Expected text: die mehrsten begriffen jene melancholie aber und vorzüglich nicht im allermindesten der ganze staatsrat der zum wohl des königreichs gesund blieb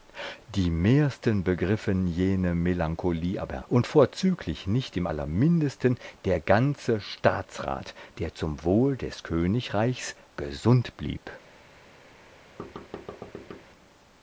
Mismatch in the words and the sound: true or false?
true